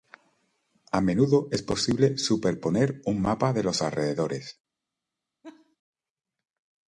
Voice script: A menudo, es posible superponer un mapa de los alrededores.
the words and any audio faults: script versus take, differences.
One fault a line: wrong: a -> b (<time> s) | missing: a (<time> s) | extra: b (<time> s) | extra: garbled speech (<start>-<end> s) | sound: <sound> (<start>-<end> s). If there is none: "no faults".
sound: laugh (5.4-5.8 s)